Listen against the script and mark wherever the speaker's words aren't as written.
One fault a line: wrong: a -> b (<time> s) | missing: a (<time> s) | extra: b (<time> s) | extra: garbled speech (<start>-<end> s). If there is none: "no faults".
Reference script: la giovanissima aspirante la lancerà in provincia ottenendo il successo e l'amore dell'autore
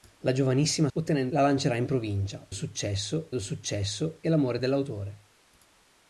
wrong: aspirante -> ottenendo (0.9 s)
wrong: ottenendo -> successo (2.5 s)